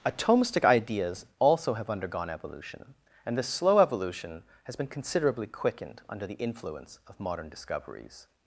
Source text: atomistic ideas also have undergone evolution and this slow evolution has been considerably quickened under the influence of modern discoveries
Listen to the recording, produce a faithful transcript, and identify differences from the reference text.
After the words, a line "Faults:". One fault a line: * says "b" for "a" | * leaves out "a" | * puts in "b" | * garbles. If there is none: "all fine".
atomistic ideas also have undergone evolution and this slow evolution has been considerably quickened under the influence of modern discoveries
Faults:
all fine